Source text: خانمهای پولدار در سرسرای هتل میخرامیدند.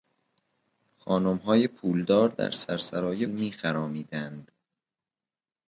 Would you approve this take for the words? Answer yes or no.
no